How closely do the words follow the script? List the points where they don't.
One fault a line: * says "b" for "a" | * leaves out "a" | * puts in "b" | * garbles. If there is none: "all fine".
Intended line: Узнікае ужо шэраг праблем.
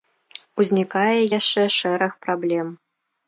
* says "яшчэ" for "ужо"